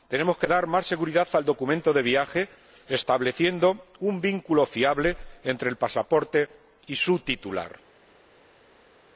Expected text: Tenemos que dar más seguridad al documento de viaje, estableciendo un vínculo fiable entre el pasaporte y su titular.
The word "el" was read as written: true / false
true